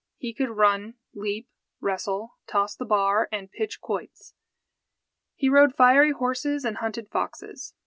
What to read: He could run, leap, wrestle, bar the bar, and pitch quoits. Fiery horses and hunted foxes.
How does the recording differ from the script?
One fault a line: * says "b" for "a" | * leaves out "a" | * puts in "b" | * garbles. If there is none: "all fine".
* says "toss" for "bar"
* puts in "He rode"